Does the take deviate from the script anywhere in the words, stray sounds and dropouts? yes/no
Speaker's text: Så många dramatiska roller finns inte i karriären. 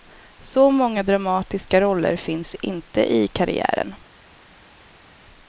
no